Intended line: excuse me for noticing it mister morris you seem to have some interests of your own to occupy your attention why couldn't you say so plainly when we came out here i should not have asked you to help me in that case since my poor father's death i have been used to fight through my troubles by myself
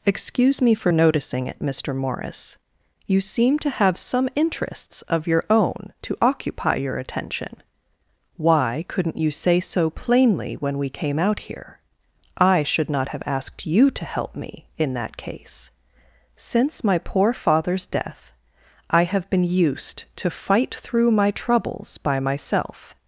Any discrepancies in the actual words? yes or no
no